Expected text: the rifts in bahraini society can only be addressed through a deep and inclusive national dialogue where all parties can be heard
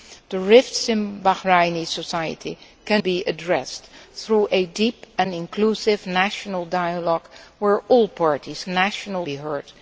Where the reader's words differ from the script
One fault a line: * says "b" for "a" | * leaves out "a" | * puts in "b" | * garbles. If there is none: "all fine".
* leaves out "only"
* says "national" for "can"